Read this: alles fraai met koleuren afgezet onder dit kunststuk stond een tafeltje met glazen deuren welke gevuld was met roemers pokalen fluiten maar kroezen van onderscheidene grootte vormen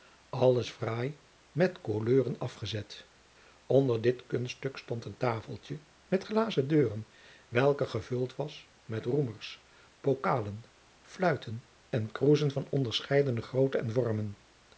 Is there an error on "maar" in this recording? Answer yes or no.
yes